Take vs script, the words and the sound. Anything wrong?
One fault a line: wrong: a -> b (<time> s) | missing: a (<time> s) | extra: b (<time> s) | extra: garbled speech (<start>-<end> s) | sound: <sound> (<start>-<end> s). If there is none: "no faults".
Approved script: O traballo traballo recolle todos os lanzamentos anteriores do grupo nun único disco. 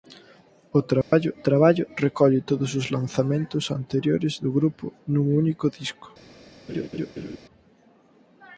sound: dropout (1.0-1.1 s)
sound: laugh (6.7-7.4 s)